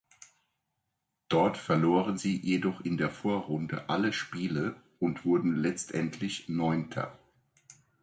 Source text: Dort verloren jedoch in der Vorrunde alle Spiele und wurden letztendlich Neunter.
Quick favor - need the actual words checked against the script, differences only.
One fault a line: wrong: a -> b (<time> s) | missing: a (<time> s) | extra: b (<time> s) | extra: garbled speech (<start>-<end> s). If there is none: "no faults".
extra: sie (2.1 s)